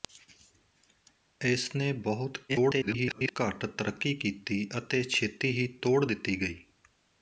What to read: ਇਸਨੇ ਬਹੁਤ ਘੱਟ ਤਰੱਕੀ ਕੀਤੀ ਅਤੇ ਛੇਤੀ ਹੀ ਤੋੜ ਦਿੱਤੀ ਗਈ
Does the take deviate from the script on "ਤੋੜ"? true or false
false